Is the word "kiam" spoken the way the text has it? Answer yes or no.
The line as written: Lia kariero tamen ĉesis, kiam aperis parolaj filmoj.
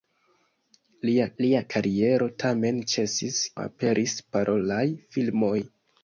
no